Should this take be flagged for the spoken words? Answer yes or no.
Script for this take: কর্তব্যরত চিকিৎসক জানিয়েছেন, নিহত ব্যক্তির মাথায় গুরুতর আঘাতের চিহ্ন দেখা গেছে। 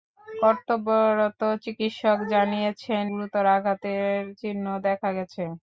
yes